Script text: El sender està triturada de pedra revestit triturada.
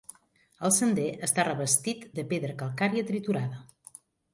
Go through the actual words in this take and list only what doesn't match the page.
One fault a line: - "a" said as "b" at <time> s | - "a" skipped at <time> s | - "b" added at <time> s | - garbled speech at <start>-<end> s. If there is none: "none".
- "triturada" said as "revestit" at 1.5 s
- "revestit" said as "calcària" at 2.7 s